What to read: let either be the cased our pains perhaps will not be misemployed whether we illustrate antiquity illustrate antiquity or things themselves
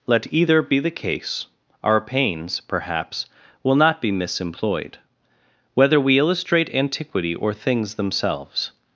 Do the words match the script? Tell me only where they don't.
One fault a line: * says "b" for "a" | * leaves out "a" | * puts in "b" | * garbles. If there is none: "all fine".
* says "case" for "cased"
* leaves out "illustrate antiquity"